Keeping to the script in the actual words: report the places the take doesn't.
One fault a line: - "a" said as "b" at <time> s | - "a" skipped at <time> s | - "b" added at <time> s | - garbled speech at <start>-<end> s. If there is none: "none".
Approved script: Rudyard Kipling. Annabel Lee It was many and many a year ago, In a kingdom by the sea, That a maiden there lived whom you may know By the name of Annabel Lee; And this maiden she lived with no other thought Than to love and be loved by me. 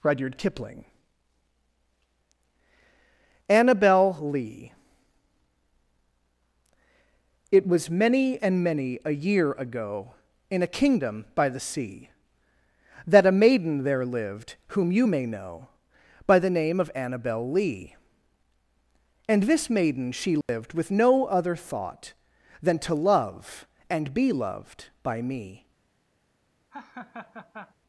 none